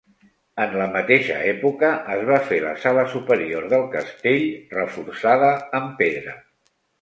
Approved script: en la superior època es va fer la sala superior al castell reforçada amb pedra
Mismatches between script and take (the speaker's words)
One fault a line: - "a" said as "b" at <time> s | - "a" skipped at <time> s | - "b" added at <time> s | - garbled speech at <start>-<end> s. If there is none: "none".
- "superior" said as "mateixa" at 0.9 s
- "al" said as "del" at 3.8 s